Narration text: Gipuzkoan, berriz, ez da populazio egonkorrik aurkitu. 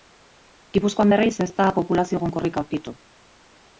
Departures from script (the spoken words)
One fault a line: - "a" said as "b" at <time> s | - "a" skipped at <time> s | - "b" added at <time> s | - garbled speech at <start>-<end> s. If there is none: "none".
none